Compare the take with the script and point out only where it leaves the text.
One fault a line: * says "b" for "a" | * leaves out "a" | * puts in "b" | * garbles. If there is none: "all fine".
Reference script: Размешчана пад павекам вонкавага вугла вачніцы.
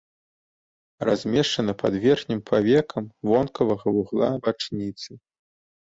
* puts in "верхнім"